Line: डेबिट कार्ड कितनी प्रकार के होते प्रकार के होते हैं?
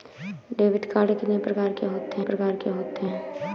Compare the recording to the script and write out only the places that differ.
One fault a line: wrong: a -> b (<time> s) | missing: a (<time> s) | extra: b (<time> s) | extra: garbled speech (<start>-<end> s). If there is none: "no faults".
no faults